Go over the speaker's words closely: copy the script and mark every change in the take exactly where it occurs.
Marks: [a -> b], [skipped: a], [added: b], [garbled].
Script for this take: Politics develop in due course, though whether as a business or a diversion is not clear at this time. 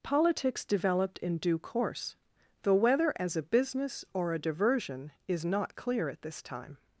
Politics [develop -> developed] in due course, though whether as a business or a diversion is not clear at this time.